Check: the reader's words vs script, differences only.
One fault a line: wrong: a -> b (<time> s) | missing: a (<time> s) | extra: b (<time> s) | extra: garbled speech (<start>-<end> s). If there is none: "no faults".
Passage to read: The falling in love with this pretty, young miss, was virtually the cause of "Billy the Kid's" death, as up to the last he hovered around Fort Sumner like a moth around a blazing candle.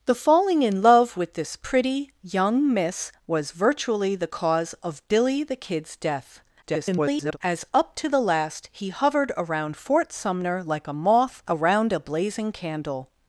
extra: garbled speech (6.6-7.4 s)